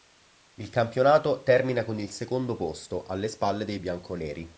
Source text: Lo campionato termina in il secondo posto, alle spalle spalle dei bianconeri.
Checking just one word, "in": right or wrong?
wrong